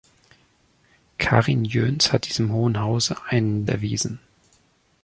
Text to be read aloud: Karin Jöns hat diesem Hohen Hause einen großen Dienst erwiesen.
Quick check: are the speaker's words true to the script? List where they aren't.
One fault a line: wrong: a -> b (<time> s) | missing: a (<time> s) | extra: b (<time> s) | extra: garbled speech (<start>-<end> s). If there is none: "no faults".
missing: großen Dienst (3.7 s)